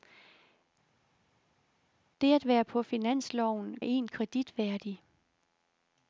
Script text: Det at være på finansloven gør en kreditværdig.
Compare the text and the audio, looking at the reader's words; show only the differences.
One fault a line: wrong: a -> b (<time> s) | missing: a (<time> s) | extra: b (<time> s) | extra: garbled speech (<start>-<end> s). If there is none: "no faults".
missing: gør (3.8 s)